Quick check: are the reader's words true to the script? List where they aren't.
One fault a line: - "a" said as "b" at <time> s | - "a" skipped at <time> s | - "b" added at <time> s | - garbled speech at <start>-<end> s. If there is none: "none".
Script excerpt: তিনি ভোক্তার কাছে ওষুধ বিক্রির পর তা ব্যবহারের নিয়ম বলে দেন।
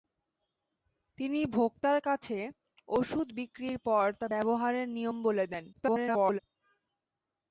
- garbled speech at 5.7-6.4 s